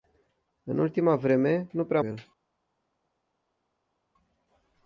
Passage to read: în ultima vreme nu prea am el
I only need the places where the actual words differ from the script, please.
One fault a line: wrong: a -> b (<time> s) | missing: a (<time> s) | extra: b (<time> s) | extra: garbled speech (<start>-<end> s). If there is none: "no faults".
no faults